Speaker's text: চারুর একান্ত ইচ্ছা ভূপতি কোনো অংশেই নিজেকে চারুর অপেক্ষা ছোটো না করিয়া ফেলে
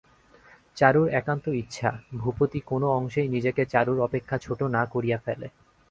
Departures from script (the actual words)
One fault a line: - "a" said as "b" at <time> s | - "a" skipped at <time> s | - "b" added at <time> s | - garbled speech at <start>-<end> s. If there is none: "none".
none